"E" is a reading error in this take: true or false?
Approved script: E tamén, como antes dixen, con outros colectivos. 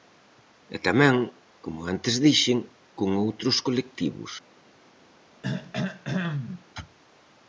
false